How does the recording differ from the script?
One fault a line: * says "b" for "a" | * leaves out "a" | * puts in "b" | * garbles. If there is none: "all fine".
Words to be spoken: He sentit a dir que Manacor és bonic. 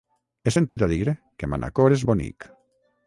all fine